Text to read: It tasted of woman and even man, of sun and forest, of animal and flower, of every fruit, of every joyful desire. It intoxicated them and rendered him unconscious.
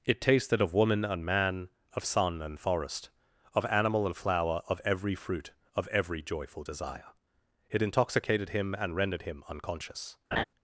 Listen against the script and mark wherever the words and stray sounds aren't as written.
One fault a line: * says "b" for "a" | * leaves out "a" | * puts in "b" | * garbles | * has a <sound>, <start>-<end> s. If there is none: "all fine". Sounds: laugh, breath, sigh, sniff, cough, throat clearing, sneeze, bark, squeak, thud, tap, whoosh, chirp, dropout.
* leaves out "even"
* says "him" for "them"
* has a laugh, 10.3-10.4 s